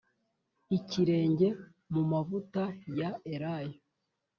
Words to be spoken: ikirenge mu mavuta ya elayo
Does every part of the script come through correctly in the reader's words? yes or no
yes